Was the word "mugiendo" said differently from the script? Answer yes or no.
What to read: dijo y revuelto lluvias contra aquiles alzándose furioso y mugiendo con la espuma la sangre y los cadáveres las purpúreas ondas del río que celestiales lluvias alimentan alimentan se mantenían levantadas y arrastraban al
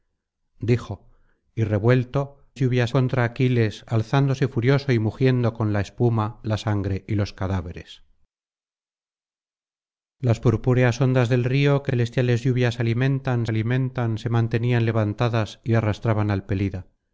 no